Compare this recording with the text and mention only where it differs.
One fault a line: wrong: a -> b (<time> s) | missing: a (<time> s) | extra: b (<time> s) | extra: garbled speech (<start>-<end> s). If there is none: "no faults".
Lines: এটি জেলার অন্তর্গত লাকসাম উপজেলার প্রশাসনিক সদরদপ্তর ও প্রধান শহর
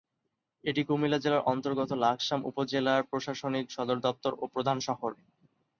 extra: কুমিল্লা (0.8 s)